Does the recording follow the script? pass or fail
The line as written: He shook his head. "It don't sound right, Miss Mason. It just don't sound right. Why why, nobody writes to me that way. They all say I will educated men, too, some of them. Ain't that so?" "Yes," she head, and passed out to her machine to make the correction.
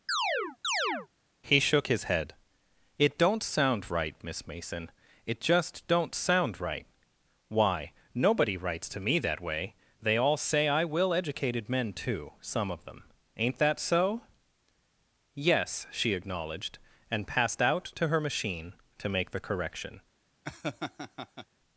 fail